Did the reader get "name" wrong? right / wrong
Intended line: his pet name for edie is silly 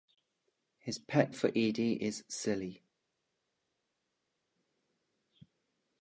wrong